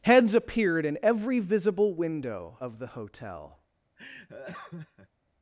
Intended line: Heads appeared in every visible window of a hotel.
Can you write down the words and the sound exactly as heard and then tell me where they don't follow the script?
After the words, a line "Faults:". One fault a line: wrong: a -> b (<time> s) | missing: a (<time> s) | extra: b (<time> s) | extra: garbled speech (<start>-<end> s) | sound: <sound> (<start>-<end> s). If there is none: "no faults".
Heads appeared in every visible window of the hotel.
Faults:
wrong: a -> the (2.8 s)
sound: laugh (4.0-5.1 s)